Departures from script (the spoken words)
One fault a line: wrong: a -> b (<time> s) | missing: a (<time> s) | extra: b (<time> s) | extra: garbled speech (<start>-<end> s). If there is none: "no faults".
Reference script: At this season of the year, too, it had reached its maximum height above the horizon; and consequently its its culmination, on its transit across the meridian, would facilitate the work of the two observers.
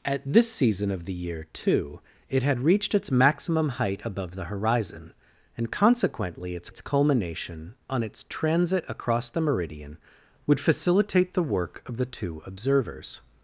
no faults